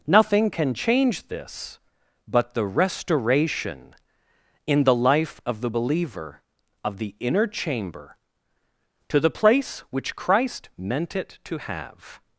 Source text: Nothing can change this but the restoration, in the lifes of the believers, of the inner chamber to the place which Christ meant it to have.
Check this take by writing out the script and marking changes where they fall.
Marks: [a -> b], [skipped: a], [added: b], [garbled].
Nothing can change this but the restoration, in the [lifes -> life] of the [believers, -> believer] of the inner chamber to the place which Christ meant it to have.